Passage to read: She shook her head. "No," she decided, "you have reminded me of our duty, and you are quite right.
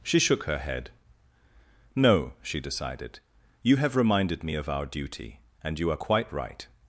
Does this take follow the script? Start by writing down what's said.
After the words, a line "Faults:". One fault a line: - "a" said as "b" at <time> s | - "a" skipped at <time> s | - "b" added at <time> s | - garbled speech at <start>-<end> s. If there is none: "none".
She shook her head. "No," she decided, "you have reminded me of our duty, and you are quite right.
Faults:
none